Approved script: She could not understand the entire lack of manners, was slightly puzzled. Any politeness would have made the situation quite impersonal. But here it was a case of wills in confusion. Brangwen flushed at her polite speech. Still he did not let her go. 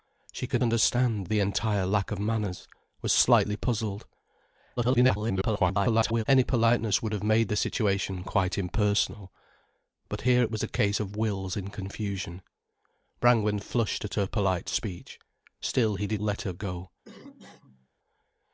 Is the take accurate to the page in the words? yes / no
no